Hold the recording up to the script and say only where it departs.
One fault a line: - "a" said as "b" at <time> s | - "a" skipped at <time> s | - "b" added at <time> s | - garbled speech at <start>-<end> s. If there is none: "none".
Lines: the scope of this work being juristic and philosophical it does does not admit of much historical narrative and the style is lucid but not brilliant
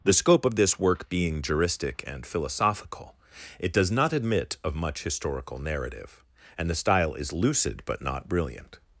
- "does" skipped at 3.9 s